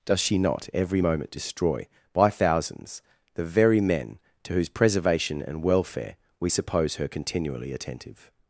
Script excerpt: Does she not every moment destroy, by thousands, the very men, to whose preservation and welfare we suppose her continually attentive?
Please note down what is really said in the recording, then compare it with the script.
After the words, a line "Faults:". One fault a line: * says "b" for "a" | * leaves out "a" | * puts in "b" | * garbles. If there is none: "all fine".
Does she not every moment destroy, by thousands, the very men, to whose preservation and welfare we suppose her continually attentive?
Faults:
all fine